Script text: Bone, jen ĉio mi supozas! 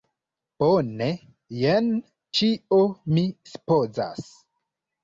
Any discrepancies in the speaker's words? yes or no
no